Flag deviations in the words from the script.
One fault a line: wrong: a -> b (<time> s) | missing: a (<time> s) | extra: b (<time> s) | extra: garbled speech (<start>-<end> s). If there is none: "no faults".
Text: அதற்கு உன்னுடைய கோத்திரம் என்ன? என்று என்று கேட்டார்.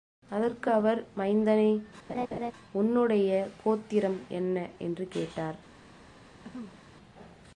extra: அவர் மைந்தனே (0.7 s)
missing: என்று (5.1 s)